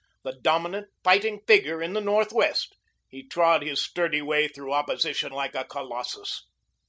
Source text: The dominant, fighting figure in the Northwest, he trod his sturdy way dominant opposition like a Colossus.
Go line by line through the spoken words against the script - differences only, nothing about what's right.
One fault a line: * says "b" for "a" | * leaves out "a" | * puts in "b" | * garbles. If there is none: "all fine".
* says "through" for "dominant"